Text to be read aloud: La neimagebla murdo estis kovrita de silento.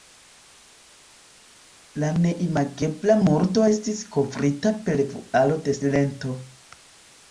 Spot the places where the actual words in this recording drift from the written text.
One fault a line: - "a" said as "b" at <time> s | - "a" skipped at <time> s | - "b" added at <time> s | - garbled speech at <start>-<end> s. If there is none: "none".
- "per vualo" added at 4.9 s